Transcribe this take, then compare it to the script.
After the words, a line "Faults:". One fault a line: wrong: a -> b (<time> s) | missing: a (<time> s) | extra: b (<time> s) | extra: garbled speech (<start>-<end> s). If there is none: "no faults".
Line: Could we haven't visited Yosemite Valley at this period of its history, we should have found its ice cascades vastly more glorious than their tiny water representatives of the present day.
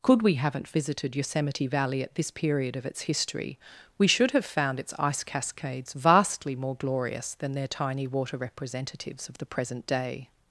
Could we haven't visited Yosemite Valley at this period of its history, we should have found its ice cascades vastly more glorious than their tiny water representatives of the present day.
Faults:
no faults